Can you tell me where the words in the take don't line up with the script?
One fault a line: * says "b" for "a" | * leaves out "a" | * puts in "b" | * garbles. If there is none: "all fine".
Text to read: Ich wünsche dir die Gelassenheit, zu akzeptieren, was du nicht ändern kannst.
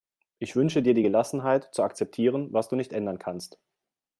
all fine